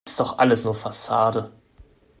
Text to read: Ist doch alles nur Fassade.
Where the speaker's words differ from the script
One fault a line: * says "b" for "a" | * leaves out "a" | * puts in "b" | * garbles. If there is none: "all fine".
all fine